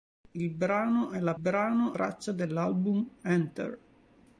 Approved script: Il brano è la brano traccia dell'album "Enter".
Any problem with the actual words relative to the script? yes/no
no